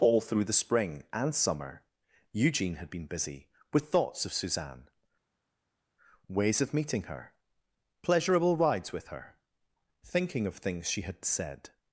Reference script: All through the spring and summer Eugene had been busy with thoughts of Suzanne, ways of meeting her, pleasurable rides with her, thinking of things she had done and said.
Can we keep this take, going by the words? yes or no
no